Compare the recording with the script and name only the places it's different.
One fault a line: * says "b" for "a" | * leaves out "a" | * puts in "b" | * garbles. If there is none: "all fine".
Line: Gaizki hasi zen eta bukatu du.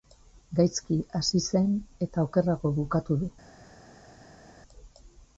* puts in "okerrago"